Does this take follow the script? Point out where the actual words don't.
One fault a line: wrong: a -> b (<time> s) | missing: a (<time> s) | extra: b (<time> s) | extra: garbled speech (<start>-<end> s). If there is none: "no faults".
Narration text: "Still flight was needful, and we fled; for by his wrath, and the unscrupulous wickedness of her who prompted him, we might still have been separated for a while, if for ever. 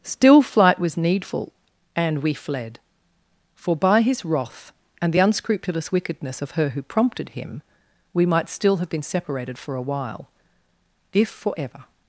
no faults